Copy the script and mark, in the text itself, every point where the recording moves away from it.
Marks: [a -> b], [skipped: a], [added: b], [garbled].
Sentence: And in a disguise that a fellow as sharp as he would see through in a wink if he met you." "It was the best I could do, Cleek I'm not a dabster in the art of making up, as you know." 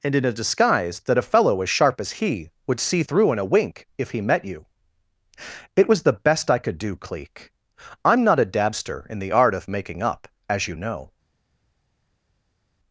And in a disguise that a fellow as sharp as he would see through in a wink if he met you." "It was the best I could do, Cleek I'm not a dabster in the art of making up, as you know."